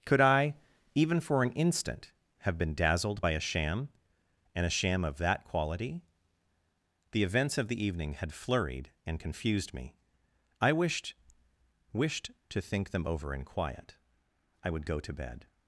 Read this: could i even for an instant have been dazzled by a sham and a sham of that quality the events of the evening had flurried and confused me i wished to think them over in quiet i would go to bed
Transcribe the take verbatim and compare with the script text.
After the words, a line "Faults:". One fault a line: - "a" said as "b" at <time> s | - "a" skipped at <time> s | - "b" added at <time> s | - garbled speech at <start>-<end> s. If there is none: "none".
could i even for an instant have been dazzled by a sham and a sham of that quality the events of the evening had flurried and confused me i wished wished to think them over in quiet i would go to bed
Faults:
- "wished" added at 11.9 s